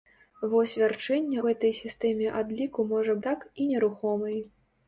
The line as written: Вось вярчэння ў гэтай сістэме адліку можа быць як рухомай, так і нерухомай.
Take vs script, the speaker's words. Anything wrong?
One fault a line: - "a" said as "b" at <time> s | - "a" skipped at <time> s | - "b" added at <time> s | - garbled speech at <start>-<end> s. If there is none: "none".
- "ў" skipped at 1.4 s
- "быць як рухомай" skipped at 3.2 s